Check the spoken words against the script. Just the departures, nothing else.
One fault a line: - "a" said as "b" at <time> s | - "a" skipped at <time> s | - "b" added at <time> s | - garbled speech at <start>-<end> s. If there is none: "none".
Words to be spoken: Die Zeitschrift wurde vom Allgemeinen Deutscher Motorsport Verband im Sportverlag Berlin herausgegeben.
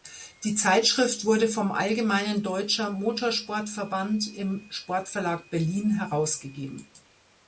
none